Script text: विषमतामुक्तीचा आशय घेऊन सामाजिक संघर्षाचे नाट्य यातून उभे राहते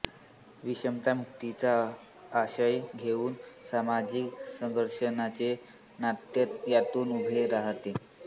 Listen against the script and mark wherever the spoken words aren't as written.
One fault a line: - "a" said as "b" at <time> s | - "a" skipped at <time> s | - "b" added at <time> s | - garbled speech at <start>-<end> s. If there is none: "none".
none